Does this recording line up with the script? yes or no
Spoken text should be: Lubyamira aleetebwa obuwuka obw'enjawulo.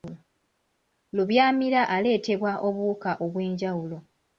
yes